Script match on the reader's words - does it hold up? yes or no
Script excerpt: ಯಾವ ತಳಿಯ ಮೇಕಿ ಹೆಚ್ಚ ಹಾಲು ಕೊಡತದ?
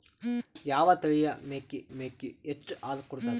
no